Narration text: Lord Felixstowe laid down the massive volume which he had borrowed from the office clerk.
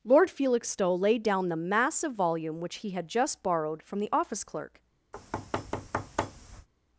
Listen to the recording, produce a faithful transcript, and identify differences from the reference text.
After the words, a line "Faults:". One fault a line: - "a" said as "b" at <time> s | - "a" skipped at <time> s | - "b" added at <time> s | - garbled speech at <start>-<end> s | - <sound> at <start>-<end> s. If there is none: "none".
Lord Felixstowe laid down the massive volume which he had just borrowed from the office clerk.
Faults:
- "just" added at 3.1 s
- thud at 5.1-6.7 s